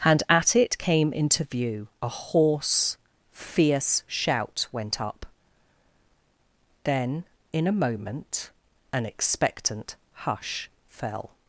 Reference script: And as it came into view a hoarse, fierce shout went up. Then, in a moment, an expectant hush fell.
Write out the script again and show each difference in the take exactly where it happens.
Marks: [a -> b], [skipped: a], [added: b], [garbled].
And [as -> at] it came into view a hoarse, fierce shout went up. Then, in a moment, an expectant hush fell.